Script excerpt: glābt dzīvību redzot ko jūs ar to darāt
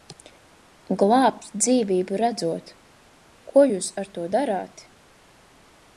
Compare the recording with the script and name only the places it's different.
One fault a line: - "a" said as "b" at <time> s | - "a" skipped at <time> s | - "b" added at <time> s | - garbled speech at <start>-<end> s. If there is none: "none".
none